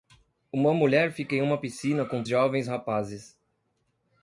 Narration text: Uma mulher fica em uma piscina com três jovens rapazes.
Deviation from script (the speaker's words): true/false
true